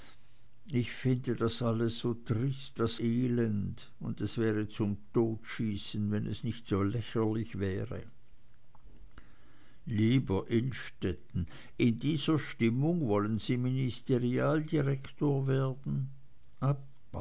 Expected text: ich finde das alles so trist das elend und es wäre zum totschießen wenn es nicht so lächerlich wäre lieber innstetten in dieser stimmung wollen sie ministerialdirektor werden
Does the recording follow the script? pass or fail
pass